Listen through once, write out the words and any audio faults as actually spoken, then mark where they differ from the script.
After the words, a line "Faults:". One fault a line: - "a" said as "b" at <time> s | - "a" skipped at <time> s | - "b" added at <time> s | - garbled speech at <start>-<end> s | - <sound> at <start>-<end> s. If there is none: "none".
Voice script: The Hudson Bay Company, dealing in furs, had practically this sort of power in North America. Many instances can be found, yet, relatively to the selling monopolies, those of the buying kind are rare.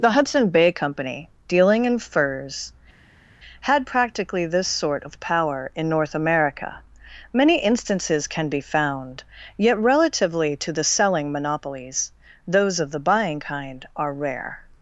The Hudson Bay Company, dealing in furs, had practically this sort of power in North America. Many instances can be found, yet, relatively to the selling monopolies, those of the buying kind are rare.
Faults:
none